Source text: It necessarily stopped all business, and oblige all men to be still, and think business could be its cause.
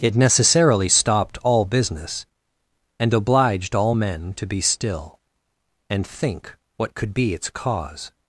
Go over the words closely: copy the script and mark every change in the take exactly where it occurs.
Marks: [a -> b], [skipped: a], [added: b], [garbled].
It necessarily stopped all business, and [oblige -> obliged] all men to be still, and think [business -> what] could be its cause.